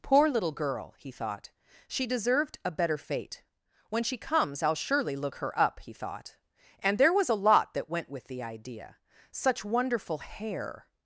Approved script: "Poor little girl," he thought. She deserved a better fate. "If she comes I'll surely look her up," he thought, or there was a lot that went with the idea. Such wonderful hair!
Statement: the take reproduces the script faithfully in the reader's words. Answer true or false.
false